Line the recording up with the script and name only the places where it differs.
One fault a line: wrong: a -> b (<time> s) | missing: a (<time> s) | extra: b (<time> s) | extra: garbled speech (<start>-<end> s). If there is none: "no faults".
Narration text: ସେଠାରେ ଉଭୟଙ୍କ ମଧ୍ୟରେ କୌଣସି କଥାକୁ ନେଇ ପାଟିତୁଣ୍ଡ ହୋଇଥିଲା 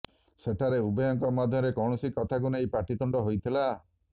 no faults